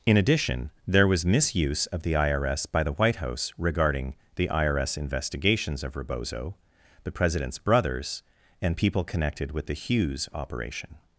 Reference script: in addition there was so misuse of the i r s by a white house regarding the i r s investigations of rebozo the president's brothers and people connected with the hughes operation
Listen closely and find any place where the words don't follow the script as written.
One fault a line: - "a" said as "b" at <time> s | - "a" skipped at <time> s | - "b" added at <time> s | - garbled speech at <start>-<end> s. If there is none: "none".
- "so" skipped at 1.2 s
- "a" said as "the" at 2.8 s